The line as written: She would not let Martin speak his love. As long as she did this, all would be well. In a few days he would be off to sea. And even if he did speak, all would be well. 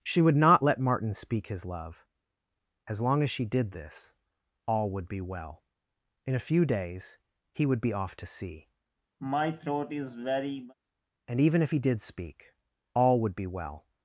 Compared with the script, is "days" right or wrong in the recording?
right